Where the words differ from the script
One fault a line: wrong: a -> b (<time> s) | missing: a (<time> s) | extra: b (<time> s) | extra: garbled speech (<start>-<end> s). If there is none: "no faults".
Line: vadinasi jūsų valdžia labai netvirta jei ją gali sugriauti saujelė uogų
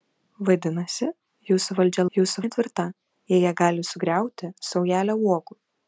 wrong: labai -> jūsų (2.2 s)